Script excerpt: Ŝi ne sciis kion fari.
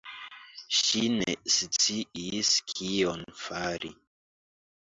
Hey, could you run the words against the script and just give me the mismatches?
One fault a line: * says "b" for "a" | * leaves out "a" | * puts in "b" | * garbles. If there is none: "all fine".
all fine